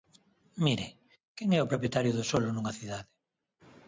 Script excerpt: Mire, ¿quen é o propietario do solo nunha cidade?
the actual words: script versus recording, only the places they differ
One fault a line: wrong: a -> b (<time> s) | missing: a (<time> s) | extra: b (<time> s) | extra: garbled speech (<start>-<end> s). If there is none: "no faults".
no faults